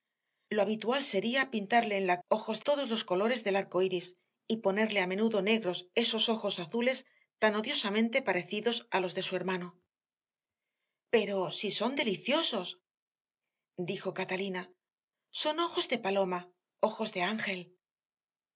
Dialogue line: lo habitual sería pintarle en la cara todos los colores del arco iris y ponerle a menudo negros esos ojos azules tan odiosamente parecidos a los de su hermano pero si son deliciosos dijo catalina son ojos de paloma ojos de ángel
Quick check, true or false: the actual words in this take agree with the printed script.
false